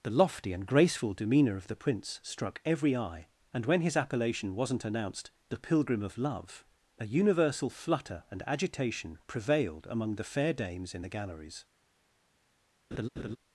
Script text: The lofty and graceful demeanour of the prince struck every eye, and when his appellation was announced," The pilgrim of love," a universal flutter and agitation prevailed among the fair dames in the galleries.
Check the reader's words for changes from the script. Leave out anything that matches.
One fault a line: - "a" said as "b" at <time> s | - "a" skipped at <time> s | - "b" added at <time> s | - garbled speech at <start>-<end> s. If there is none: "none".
- "was" said as "wasn't" at 4.5 s